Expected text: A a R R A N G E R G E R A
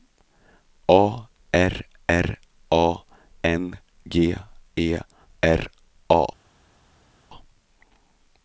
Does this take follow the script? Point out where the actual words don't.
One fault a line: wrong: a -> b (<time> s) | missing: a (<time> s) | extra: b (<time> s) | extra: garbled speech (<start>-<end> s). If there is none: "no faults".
missing: a (1.3 s)
missing: G E R (5.7 s)